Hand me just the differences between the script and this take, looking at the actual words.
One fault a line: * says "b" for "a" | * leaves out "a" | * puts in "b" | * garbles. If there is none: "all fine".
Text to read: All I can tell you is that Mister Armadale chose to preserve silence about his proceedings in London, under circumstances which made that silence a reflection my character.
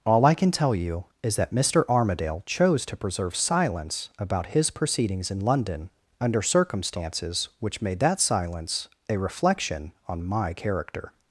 * puts in "on"